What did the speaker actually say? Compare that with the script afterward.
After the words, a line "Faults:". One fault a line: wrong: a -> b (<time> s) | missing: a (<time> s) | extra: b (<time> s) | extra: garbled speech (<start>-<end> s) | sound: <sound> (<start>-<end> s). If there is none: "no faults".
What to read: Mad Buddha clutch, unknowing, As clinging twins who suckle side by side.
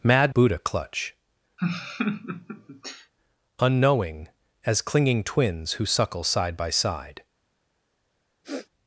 Mad Buddha clutch, unknowing, As clinging twins who suckle side by side.
Faults:
sound: laugh (1.6-3.1 s)
sound: sniff (8.4-8.7 s)